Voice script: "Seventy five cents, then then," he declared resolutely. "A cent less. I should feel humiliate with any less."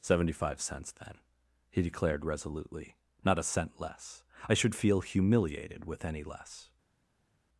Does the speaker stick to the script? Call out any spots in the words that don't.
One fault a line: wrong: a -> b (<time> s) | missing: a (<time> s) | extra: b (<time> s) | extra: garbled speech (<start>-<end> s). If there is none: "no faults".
missing: then (1.2 s)
extra: Not (3.2 s)
wrong: humiliate -> humiliated (5.0 s)